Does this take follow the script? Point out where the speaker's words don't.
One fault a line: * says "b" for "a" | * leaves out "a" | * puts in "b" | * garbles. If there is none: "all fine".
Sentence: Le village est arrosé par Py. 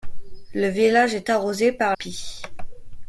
all fine